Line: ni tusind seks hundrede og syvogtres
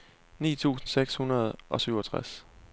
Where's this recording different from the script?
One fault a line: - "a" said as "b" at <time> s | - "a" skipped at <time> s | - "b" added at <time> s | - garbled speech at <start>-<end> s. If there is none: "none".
none